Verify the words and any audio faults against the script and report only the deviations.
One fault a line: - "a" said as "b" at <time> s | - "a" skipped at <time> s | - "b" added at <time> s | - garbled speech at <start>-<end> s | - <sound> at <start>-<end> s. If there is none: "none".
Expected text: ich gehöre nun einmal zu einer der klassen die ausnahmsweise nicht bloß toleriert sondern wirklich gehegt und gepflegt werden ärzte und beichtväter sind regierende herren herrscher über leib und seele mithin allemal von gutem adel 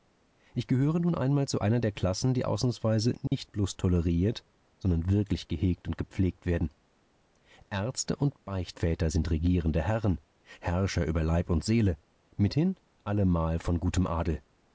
- dropout at 3.3-3.3 s